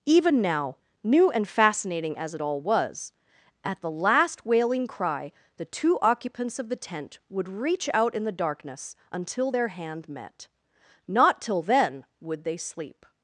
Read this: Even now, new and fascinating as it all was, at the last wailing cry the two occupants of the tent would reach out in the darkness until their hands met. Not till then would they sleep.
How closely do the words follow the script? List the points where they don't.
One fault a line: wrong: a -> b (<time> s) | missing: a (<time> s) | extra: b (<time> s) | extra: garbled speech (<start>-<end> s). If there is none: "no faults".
wrong: hands -> hand (9.7 s)